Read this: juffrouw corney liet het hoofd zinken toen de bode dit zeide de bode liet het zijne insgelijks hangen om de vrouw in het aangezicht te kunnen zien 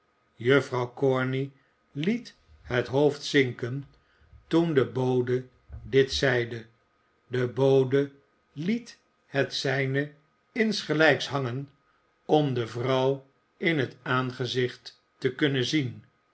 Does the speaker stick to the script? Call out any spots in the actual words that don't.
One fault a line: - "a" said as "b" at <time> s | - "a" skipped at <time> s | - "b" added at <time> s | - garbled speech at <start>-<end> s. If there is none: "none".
none